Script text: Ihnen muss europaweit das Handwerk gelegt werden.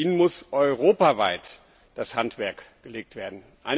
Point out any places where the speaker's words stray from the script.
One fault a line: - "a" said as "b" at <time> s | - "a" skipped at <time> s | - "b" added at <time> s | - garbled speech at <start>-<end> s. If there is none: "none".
none